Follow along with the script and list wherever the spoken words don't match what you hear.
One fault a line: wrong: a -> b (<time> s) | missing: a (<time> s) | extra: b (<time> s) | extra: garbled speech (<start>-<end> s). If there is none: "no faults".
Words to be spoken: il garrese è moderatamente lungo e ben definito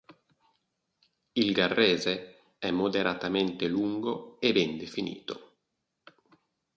no faults